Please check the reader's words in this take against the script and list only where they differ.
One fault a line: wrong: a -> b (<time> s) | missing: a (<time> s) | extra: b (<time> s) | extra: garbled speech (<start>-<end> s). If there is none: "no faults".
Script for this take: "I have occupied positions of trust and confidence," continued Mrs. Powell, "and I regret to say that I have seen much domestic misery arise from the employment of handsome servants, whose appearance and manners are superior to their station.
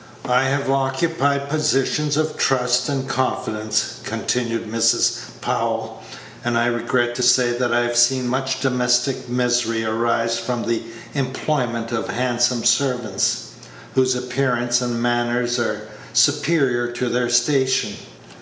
no faults